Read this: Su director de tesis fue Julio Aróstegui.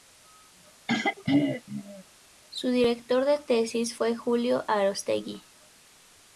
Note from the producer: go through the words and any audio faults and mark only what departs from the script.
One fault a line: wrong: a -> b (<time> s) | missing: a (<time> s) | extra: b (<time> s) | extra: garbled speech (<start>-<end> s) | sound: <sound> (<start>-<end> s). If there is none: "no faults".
sound: throat clearing (0.9-2.0 s)